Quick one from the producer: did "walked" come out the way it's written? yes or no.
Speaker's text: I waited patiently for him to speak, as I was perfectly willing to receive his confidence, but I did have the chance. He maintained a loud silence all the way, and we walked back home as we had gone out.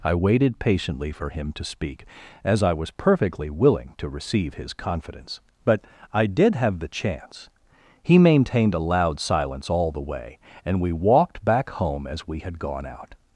yes